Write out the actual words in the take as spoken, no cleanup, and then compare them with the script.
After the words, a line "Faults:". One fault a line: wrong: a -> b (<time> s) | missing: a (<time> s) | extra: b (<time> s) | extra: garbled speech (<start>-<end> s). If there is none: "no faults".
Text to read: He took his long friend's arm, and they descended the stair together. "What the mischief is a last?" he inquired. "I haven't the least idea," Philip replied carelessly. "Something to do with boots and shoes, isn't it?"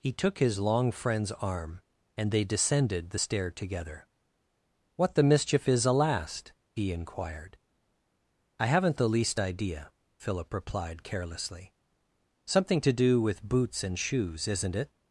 He took his long friend's arm, and they descended the stair together. "What the mischief is a last?" he inquired. "I haven't the least idea," Philip replied carelessly. "Something to do with boots and shoes, isn't it?"
Faults:
no faults